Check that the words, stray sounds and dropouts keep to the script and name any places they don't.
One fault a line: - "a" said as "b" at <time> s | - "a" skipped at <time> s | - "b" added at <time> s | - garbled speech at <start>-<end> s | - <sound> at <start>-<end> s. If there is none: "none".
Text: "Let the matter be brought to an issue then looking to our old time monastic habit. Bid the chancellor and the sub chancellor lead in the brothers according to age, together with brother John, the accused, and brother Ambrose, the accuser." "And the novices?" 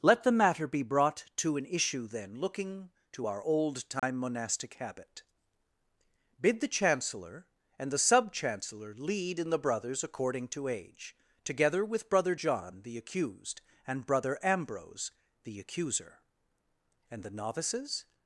- dropout at 4.0-4.0 s